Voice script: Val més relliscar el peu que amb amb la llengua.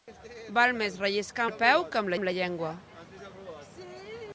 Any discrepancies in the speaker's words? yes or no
no